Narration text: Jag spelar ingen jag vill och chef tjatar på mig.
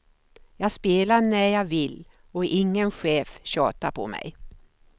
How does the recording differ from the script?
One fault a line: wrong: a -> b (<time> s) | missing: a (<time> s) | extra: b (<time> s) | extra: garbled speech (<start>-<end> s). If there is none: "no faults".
wrong: ingen -> när (1.2 s)
extra: ingen (2.5 s)